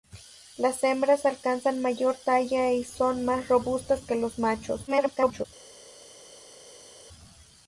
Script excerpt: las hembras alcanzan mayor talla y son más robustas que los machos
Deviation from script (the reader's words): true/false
true